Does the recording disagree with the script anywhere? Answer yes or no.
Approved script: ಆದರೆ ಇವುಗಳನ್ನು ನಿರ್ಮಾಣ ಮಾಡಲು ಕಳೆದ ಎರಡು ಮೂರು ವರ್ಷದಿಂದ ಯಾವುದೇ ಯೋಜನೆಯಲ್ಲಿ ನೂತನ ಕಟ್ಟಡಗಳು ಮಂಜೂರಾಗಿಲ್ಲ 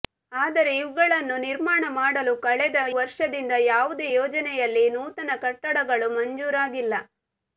yes